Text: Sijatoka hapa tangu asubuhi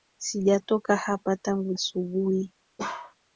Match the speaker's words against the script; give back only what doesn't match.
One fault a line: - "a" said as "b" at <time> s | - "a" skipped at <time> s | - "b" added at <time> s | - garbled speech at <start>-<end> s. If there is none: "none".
none